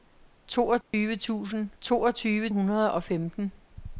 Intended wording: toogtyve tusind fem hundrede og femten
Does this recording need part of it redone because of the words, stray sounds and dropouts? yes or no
yes